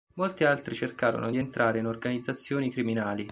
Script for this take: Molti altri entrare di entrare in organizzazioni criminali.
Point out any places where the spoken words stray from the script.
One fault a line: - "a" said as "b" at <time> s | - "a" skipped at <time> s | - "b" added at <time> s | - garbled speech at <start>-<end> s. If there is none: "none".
- "entrare" said as "cercarono" at 0.7 s